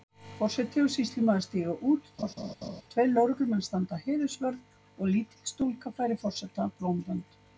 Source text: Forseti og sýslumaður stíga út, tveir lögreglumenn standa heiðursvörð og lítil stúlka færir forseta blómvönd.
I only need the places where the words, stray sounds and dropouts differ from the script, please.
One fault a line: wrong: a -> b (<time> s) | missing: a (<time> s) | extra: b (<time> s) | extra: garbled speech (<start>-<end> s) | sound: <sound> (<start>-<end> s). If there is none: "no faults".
sound: laugh (2.2-2.8 s)